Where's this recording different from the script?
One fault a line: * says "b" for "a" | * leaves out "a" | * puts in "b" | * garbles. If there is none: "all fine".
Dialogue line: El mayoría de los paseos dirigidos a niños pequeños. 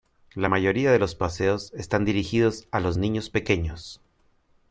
* says "La" for "El"
* puts in "están"
* puts in "los"